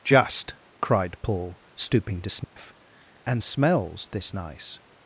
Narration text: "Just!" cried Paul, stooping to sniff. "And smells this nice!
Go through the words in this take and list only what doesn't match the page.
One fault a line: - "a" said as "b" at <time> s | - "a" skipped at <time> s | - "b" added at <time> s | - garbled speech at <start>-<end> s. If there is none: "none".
none